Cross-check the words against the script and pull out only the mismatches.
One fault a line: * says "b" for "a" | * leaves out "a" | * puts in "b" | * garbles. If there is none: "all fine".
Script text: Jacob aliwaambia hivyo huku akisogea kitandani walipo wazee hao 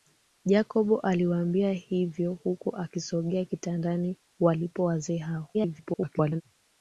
* garbles